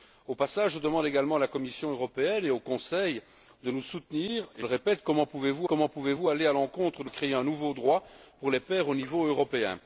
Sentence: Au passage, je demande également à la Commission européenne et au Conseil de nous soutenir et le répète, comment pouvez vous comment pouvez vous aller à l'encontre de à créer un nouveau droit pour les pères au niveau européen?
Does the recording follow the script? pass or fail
pass